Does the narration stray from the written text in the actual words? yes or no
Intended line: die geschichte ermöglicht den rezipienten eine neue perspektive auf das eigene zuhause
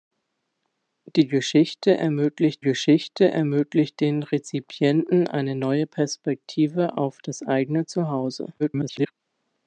yes